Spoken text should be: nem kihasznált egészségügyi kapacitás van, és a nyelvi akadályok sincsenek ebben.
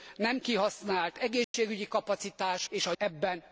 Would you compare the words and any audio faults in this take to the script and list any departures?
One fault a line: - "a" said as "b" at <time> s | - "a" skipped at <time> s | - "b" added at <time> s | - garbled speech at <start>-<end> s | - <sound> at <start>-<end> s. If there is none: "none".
- dropout at 1.4-1.5 s
- "van" skipped at 2.6 s
- "nyelvi akadályok sincsenek" skipped at 2.9 s